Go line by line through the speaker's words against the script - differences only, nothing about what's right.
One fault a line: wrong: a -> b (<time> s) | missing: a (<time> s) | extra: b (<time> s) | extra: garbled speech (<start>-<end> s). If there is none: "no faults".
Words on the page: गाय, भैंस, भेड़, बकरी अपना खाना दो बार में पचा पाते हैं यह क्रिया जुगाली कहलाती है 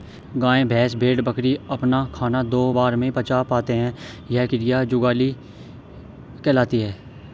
no faults